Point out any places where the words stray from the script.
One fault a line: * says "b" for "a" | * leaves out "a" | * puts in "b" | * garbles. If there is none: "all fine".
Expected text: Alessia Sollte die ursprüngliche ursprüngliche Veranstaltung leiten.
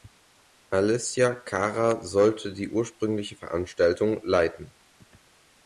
* puts in "Cara"
* leaves out "ursprüngliche"